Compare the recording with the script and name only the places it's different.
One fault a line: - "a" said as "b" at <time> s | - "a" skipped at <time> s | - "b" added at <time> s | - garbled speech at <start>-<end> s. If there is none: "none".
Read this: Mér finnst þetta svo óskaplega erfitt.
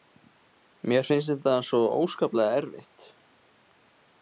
none